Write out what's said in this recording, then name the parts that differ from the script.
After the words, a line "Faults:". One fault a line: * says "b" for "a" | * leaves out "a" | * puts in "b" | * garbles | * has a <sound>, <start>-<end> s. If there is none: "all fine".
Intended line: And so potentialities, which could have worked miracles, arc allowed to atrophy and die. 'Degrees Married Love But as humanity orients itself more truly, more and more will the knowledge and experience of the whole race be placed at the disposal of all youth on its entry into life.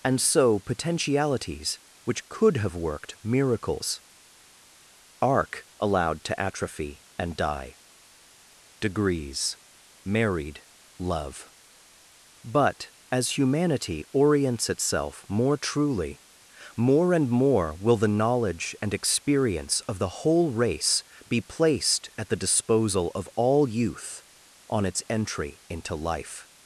And so potentialities, which could have worked miracles, arc allowed to atrophy and die. 'Degrees Married Love But as humanity orients itself more truly, more and more will the knowledge and experience of the whole race be placed at the disposal of all youth on its entry into life.
Faults:
all fine